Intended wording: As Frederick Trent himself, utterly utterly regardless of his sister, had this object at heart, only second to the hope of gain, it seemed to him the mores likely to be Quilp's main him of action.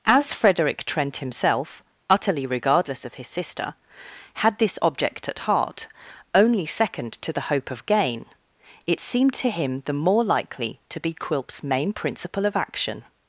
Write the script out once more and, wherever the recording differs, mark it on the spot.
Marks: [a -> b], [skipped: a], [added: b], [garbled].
As Frederick Trent himself, utterly [skipped: utterly] regardless of his sister, had this object at heart, only second to the hope of gain, it seemed to him the [mores -> more] likely to be Quilp's main [him -> principle] of action.